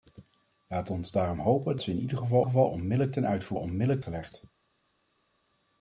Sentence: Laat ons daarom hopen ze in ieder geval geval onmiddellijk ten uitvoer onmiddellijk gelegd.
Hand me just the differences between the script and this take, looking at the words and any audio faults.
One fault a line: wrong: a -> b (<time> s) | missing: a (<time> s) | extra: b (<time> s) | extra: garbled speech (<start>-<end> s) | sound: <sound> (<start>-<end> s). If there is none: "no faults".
no faults